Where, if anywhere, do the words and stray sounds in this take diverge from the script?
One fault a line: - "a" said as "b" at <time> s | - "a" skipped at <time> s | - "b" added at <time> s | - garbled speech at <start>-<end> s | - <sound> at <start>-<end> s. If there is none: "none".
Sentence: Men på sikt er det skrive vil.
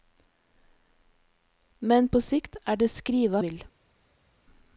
none